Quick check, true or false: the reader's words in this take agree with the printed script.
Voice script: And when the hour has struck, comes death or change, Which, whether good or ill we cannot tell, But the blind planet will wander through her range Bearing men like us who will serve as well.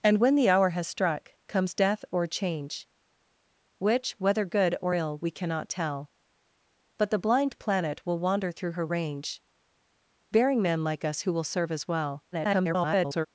false